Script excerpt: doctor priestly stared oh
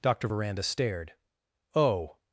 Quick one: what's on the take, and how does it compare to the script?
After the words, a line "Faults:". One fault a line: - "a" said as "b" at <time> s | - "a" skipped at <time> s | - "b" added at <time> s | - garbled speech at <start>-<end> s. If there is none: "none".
doctor veranda stared oh
Faults:
- "priestly" said as "veranda" at 0.2 s